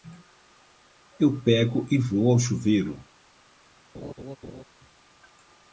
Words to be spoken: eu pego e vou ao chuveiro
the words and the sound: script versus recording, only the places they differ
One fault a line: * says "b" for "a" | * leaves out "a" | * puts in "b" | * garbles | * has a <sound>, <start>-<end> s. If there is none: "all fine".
* has a laugh, 3.9-4.6 s